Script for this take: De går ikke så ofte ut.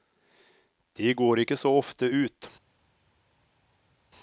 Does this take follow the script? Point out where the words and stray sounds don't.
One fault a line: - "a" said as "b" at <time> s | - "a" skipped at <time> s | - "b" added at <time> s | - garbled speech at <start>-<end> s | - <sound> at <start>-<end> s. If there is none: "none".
none